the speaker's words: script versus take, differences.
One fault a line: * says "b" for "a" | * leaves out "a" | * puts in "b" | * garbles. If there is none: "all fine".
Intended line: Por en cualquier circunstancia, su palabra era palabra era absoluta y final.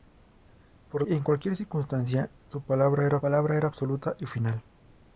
all fine